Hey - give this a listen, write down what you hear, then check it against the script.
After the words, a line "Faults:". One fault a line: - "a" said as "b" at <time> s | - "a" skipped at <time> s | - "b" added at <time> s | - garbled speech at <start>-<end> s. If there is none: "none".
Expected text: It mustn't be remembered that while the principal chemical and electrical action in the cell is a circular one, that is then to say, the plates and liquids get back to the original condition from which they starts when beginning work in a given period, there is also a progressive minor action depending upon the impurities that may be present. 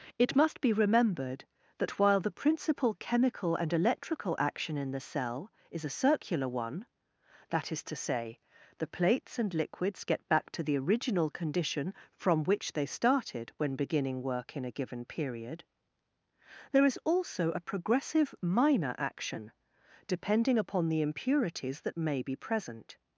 It must be remembered that while the principal chemical and electrical action in the cell is a circular one, that is to say, the plates and liquids get back to the original condition from which they started when beginning work in a given period, there is also a progressive minor action depending upon the impurities that may be present.
Faults:
- "mustn't" said as "must" at 0.3 s
- "then" skipped at 7.8 s
- "starts" said as "started" at 12.8 s